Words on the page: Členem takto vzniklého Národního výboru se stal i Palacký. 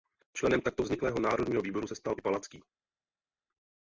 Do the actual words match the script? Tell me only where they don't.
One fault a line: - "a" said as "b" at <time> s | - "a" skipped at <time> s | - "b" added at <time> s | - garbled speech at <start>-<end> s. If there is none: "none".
none